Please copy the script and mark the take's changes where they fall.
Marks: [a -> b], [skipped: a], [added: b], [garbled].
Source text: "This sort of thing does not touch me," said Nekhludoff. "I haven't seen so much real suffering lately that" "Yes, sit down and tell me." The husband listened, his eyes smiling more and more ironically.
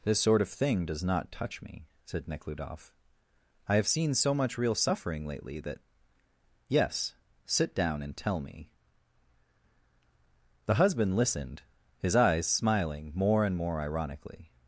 "This sort of thing does not touch me," said Nekhludoff. "I [haven't -> have] seen so much real suffering lately that" "Yes, sit down and tell me." The husband listened, his eyes smiling more and more ironically.